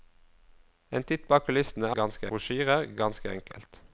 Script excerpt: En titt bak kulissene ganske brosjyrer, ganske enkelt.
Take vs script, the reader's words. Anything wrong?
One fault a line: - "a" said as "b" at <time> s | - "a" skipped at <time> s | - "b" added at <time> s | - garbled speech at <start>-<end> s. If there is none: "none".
none